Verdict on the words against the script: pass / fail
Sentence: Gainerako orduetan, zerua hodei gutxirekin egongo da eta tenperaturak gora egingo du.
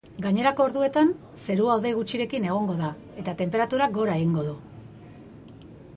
pass